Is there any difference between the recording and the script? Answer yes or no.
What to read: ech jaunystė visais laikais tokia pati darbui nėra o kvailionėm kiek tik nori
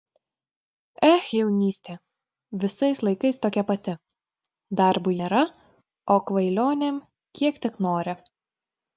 no